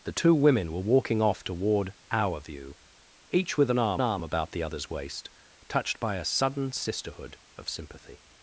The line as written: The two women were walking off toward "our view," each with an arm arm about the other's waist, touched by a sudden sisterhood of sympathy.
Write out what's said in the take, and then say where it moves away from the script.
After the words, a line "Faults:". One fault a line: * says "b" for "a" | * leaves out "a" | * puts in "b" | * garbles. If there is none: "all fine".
The two women were walking off toward "our view," each with an arm arm about the other's waist, touched by a sudden sisterhood of sympathy.
Faults:
all fine